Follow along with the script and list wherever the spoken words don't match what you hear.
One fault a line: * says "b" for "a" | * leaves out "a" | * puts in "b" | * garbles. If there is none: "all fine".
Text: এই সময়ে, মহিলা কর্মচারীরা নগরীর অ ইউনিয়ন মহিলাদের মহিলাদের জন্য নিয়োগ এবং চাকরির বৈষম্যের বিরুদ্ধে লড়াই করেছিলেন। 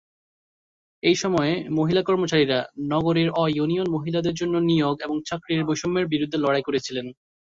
* leaves out "মহিলাদের"